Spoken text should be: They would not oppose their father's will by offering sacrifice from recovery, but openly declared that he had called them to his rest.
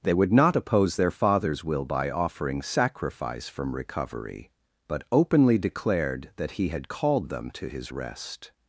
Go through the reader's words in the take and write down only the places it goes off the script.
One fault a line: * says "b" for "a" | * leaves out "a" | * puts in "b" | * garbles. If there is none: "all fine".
all fine